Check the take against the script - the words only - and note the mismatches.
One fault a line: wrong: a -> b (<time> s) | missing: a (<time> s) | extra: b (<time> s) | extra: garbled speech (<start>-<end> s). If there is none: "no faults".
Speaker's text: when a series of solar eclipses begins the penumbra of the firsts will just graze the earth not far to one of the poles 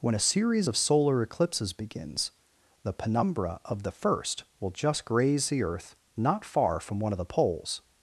wrong: firsts -> first (3.9 s)
wrong: to -> from (6.8 s)